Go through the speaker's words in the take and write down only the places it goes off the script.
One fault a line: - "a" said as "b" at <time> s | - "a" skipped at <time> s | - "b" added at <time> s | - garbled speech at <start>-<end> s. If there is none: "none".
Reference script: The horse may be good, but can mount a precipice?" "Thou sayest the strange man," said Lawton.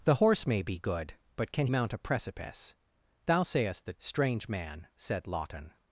none